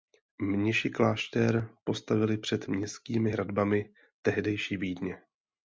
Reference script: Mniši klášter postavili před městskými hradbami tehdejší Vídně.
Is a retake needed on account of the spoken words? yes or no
no